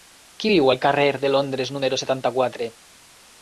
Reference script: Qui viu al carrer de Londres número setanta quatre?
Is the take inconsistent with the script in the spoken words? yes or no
no